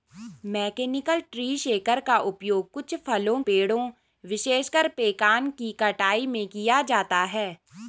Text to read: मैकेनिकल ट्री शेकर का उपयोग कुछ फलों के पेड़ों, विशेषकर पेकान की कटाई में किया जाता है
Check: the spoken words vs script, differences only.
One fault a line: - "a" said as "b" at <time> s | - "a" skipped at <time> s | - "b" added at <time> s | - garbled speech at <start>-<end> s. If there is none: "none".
- "के" skipped at 3.4 s